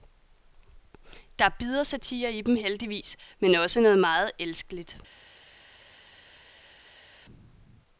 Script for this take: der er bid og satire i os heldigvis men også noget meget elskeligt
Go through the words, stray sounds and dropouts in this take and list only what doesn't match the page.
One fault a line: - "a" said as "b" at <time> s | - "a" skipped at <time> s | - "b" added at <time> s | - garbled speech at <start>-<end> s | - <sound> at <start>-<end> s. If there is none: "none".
- "os" said as "dem" at 2.4 s